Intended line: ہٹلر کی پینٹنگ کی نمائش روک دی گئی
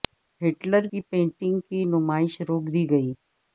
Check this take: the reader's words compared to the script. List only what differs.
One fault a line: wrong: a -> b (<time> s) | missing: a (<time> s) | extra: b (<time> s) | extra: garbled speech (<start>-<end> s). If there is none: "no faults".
no faults